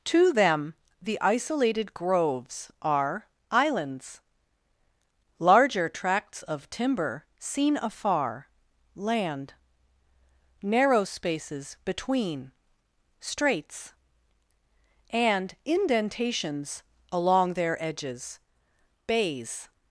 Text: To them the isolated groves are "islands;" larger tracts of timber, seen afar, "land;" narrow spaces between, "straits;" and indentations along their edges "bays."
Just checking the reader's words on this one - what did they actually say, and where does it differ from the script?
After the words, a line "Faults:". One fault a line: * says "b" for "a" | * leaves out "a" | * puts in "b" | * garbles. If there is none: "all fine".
To them the isolated groves are "islands;" larger tracts of timber, seen afar, "land;" narrow spaces between, "straits;" and indentations along their edges "bays."
Faults:
all fine